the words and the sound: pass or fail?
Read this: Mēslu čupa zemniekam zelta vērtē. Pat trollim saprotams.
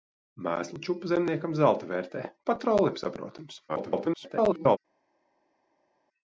fail